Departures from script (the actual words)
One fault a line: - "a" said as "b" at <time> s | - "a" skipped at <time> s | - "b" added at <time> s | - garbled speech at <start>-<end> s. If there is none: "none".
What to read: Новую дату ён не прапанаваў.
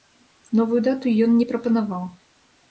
none